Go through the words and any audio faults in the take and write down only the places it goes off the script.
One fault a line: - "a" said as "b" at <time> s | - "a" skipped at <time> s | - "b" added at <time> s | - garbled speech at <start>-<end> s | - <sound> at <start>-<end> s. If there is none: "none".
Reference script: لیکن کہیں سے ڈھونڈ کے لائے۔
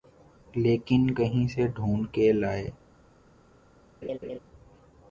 - laugh at 4.0-4.4 s